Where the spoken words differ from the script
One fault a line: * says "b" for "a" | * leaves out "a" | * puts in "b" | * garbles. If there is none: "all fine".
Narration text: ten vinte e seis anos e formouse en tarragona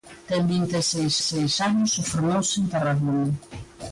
* puts in "seis"